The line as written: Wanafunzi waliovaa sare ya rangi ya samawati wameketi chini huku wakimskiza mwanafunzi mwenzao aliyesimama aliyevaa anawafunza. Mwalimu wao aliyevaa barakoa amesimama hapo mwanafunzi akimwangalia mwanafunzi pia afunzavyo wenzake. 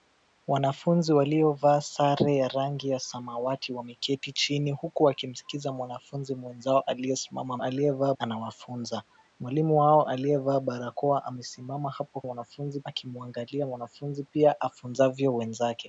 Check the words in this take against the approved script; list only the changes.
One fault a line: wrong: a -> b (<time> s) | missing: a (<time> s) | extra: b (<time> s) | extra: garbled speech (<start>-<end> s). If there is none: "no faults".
no faults